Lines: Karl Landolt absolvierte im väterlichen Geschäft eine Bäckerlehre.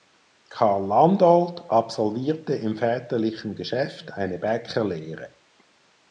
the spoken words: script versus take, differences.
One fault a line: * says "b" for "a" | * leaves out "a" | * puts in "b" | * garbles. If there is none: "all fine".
all fine